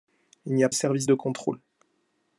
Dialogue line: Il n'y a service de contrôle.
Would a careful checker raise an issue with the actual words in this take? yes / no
no